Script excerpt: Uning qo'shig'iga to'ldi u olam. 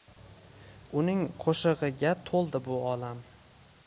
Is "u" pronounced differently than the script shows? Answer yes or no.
yes